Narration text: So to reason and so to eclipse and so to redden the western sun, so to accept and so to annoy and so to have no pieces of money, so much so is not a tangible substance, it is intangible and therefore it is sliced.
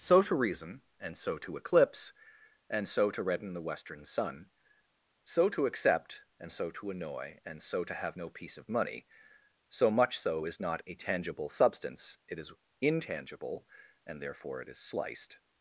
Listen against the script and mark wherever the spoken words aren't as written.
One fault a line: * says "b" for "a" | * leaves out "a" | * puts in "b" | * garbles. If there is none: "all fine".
* says "piece" for "pieces"